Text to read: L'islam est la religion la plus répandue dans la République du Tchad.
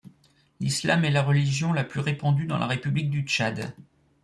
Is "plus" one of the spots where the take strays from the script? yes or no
no